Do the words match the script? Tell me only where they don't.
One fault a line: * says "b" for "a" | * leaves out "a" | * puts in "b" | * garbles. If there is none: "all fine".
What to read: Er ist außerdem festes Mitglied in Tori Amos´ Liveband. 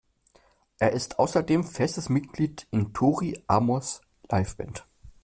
all fine